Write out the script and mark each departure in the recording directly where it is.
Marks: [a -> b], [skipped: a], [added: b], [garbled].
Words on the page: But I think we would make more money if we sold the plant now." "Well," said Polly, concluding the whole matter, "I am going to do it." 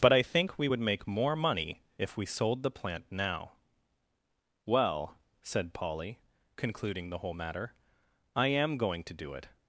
But I think we would make more money if we sold the plant now." "Well," said Polly, concluding the whole matter, "I am going to do it."